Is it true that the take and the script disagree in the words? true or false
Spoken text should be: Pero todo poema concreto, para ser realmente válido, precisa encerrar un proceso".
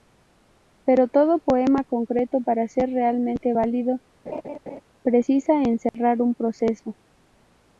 false